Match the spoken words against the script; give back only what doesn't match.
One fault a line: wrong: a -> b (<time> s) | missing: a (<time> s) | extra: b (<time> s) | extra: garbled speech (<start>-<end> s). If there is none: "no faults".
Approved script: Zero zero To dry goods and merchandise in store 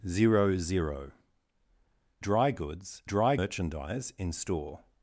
missing: To (1.1 s)
wrong: and -> dry (3.0 s)